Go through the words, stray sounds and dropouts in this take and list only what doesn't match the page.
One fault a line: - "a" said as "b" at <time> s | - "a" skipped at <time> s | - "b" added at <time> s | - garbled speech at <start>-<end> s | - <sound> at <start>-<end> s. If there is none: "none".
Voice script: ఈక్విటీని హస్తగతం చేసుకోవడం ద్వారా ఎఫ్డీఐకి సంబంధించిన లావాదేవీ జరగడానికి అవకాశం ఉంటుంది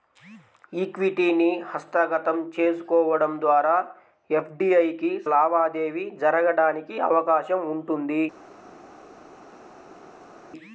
- "సంబంధించిన" skipped at 5.1 s